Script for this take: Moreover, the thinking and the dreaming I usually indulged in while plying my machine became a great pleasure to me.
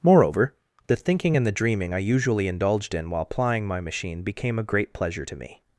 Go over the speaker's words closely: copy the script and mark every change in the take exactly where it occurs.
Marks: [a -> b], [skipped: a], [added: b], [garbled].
Moreover, the thinking and the dreaming I usually indulged in while plying my machine became a great pleasure to me.